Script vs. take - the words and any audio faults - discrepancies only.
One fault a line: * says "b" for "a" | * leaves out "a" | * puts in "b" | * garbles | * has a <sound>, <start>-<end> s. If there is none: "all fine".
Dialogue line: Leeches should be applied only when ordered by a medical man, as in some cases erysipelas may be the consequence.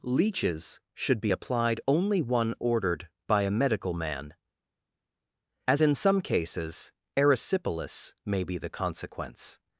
* says "one" for "when"